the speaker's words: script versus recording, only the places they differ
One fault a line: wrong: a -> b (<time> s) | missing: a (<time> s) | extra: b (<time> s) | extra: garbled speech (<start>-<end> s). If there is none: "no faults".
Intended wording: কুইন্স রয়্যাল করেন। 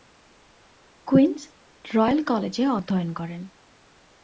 extra: কলেজে অধ্যয়ন (2.2 s)